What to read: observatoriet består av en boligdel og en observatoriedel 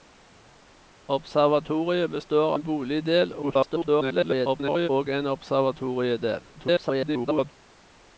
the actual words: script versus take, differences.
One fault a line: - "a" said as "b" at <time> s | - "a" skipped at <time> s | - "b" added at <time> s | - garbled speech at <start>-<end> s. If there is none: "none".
- "av" skipped at 2.5 s
- garbled speech at 3.4-4.9 s
- garbled speech at 6.5-7.5 s